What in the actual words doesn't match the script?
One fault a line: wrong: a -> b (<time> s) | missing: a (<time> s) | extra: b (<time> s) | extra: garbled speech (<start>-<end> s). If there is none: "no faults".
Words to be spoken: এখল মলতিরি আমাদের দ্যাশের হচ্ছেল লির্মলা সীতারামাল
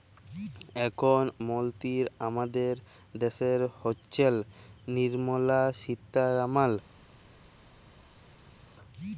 no faults